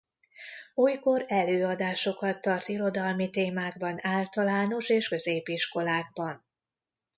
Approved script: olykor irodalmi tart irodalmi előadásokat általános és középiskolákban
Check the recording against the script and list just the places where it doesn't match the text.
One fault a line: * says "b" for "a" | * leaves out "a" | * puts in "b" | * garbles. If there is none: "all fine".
* says "előadásokat" for "irodalmi"
* says "témákban" for "előadásokat"